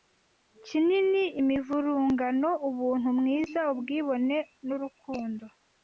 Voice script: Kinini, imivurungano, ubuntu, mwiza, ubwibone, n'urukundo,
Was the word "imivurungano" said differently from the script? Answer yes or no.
no